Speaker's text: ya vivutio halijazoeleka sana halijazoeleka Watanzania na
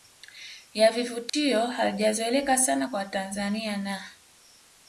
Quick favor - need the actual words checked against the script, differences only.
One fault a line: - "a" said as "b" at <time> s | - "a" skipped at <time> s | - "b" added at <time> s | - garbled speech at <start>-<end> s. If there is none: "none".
- "halijazoeleka" said as "kwa" at 2.8 s